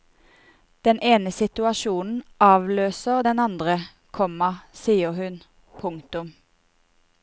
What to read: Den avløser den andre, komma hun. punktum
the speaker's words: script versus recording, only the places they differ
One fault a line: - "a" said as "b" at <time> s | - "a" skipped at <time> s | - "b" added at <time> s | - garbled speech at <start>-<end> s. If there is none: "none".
- "ene situasjonen" added at 1.1 s
- "sier" added at 4.8 s